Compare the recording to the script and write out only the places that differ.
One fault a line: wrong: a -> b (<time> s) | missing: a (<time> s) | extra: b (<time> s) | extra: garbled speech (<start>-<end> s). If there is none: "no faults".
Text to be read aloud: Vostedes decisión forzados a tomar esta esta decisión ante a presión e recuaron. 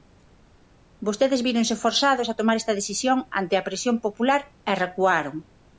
wrong: decisión -> víronse (1.5 s)
missing: esta (2.8 s)
extra: popular (4.0 s)